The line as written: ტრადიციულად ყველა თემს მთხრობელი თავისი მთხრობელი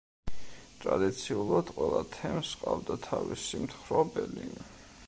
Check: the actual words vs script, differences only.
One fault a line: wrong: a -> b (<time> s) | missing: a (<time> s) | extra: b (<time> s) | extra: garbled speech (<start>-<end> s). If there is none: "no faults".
wrong: მთხრობელი -> ჰყავდა (2.6 s)